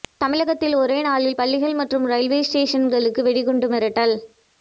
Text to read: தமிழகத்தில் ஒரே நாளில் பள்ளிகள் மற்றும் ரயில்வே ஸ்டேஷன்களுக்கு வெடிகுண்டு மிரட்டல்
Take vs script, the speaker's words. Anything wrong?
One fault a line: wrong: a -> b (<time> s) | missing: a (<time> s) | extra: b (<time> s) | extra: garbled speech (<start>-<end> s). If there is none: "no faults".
no faults